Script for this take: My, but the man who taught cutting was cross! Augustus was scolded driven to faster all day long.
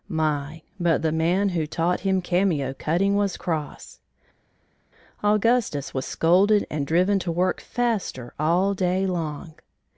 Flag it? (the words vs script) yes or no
yes